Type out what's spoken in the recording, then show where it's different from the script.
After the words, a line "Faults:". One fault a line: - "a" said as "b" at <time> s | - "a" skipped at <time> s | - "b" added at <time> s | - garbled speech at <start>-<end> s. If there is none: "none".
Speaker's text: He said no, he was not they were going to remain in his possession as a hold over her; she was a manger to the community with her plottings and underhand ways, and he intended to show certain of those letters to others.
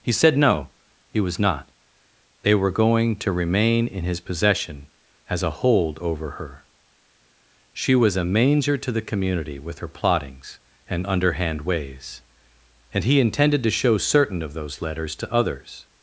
He said no, he was not they were going to remain in his possession as a hold over her; she was a manger to the community with her plottings and underhand ways, and he intended to show certain of those letters to others.
Faults:
none